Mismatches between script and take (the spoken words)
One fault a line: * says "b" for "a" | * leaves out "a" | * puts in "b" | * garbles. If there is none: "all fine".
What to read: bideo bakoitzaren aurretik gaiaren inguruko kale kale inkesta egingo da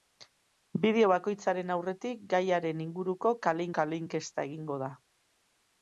all fine